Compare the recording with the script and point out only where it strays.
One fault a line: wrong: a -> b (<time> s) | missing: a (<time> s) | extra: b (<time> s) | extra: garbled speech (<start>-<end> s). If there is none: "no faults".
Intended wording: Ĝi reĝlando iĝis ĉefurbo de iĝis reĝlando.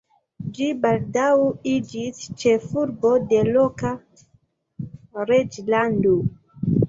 wrong: reĝlando -> baldaŭ (0.8 s)
wrong: iĝis -> loka (3.5 s)